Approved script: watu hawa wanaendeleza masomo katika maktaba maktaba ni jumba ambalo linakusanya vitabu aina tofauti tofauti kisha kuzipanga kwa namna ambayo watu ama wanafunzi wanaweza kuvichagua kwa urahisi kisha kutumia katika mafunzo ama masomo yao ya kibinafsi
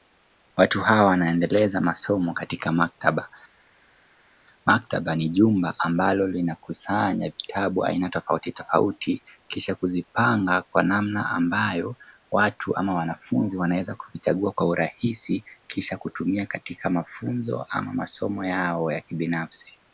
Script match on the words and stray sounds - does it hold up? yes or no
yes